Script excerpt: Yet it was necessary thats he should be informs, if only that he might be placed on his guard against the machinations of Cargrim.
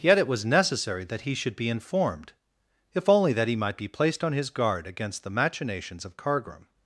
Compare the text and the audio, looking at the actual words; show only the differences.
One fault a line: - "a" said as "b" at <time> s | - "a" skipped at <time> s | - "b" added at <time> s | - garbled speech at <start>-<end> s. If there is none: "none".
- "thats" said as "that" at 1.1 s
- "informs" said as "informed" at 1.7 s